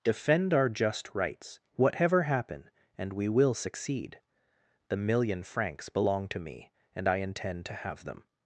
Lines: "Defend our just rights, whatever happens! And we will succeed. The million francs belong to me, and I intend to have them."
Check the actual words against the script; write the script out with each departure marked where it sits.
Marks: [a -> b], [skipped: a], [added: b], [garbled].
"Defend our just rights, whatever [happens! -> happen] And we will succeed. The million francs belong to me, and I intend to have them."